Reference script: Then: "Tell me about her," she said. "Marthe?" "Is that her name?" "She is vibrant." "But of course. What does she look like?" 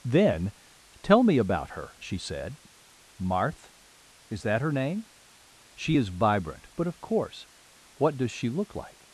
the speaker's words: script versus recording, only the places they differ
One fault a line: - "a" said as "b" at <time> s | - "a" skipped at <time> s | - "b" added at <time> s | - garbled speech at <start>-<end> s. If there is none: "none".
none